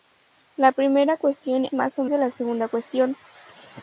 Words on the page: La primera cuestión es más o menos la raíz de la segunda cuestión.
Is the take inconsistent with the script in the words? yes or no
yes